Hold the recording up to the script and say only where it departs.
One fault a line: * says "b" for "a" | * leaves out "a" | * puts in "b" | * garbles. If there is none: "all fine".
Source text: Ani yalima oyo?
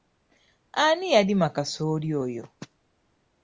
* puts in "kasooli"